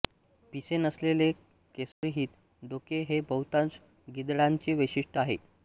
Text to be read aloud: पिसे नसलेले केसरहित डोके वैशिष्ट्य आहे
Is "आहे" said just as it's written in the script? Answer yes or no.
yes